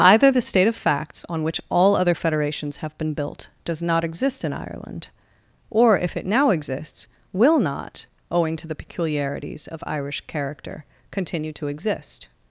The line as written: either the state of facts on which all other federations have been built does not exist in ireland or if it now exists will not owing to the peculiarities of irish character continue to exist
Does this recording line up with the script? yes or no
yes